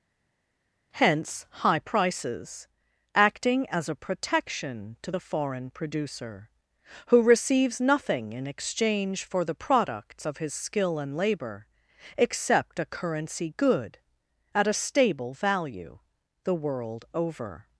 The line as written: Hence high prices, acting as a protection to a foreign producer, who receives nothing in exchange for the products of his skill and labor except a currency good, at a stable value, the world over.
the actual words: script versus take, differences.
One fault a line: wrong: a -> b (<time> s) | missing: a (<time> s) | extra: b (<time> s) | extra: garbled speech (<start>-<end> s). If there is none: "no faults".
wrong: a -> the (5.1 s)